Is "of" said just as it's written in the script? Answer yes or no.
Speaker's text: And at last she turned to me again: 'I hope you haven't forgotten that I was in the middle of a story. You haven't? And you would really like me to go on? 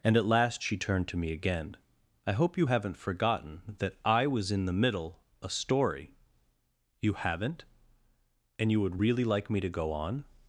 no